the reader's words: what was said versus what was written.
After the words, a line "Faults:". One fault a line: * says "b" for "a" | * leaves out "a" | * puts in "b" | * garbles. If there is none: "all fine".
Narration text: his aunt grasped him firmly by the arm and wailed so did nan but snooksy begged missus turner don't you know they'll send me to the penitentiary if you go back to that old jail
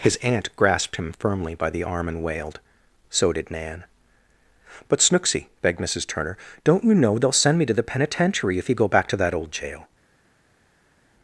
his aunt grasped him firmly by the arm and wailed so did nan but snooksy begged missus turner don't you know they'll send me to the penitentiary if you go back to that old jail
Faults:
all fine